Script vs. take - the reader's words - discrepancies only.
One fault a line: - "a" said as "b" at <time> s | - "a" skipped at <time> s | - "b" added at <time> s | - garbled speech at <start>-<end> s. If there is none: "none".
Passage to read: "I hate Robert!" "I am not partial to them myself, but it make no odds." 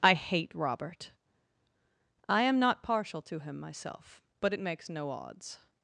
- "them" said as "him" at 3.4 s
- "make" said as "makes" at 4.6 s